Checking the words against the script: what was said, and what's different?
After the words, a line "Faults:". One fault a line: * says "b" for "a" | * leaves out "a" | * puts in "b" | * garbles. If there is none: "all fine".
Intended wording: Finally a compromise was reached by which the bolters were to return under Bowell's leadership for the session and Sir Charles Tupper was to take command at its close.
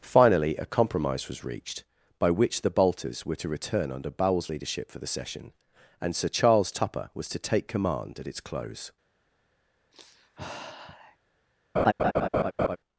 Finally a compromise was reached by which the bolters were to return under Bowell's leadership for the session and Sir Charles Tupper was to take command at its close.
Faults:
all fine